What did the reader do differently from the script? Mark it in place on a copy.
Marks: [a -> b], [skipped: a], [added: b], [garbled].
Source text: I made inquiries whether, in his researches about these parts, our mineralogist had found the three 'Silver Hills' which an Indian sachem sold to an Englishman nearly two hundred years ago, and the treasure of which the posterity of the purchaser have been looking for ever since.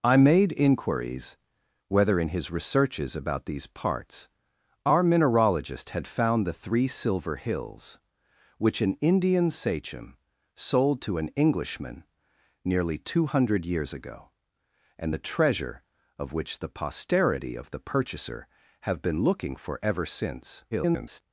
I made inquiries whether, in his researches about these parts, our mineralogist had found the three 'Silver Hills' which an Indian sachem sold to an Englishman nearly two hundred years ago, and the treasure of which the posterity of the purchaser have been looking for ever since. [garbled]